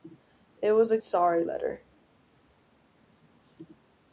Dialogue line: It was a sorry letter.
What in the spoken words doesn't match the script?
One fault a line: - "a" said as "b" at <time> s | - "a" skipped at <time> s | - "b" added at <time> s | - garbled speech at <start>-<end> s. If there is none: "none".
none